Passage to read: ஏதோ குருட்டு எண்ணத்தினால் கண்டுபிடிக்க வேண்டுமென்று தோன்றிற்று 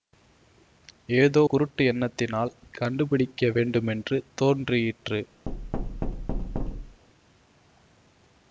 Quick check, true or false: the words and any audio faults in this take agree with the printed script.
false